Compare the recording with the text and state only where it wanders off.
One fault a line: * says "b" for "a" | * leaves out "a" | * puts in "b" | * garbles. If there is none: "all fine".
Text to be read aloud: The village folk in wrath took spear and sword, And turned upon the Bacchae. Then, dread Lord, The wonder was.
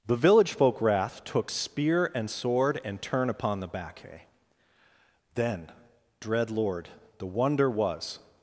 * leaves out "in"
* says "turn" for "turned"